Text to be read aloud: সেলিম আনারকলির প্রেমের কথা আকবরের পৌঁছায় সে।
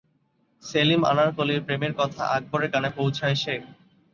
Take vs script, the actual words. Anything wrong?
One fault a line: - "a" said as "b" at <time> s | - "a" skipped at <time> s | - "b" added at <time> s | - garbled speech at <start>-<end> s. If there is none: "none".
- "কানে" added at 2.7 s